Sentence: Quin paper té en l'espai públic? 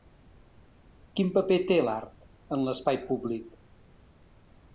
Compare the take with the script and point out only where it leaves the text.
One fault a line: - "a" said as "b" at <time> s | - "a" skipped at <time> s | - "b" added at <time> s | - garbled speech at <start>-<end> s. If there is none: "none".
- "l'art" added at 1.9 s